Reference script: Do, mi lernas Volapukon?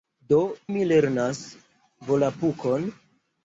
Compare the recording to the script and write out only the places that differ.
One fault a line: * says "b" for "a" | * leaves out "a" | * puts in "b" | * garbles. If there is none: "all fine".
all fine